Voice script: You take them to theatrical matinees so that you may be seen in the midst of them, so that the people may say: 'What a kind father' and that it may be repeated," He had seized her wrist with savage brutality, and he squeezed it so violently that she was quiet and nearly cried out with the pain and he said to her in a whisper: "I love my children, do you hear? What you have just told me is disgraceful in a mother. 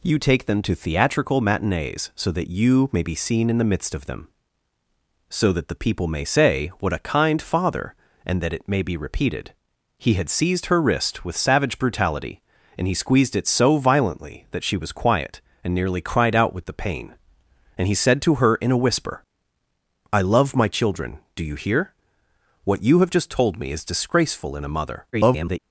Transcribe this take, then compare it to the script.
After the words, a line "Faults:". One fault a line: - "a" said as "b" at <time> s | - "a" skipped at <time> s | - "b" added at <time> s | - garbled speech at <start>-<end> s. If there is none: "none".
You take them to theatrical matinees so that you may be seen in the midst of them, so that the people may say: 'What a kind father' and that it may be repeated," He had seized her wrist with savage brutality, and he squeezed it so violently that she was quiet and nearly cried out with the pain and he said to her in a whisper: "I love my children, do you hear? What you have just told me is disgraceful in a mother. [garbled]
Faults:
- garbled speech at 25.1-25.6 s